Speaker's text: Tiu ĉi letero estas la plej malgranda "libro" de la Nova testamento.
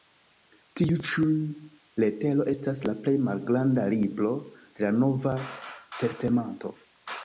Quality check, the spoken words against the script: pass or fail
pass